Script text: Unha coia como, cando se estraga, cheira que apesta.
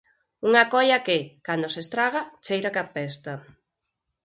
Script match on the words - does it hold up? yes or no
no